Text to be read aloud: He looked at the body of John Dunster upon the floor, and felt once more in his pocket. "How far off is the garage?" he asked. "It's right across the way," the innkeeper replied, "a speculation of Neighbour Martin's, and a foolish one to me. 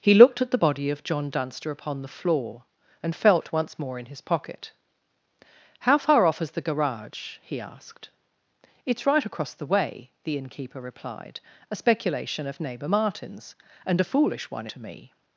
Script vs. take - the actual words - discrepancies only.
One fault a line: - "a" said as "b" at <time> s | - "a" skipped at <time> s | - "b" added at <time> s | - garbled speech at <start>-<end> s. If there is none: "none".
none